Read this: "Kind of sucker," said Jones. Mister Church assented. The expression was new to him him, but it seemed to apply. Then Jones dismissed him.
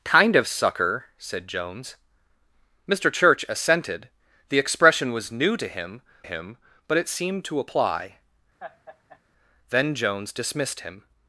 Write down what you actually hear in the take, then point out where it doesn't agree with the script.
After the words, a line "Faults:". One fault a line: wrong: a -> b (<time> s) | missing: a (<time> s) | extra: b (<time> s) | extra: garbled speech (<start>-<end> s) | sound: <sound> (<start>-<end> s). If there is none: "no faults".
"Kind of sucker," said Jones. Mister Church assented. The expression was new to him him, but it seemed to apply. Then Jones dismissed him.
Faults:
sound: laugh (8.6-9.2 s)